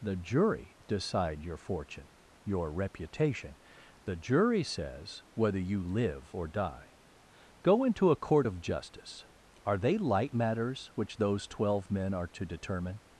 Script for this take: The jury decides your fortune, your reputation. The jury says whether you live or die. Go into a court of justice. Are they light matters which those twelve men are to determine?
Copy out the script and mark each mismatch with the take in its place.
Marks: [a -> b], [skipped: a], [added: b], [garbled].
The jury [decides -> decide] your fortune, your reputation. The jury says whether you live or die. Go into a court of justice. Are they light matters which those twelve men are to determine?